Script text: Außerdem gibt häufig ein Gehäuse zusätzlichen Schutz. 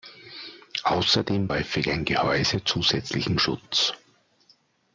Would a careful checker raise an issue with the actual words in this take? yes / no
yes